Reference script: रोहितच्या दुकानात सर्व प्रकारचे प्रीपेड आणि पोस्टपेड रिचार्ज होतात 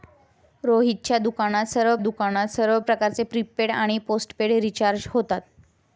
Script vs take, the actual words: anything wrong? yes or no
yes